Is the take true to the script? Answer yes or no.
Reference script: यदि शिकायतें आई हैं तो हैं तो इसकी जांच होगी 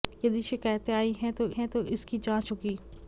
yes